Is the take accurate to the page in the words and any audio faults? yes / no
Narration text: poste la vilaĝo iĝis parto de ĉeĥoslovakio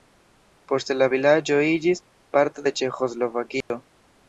no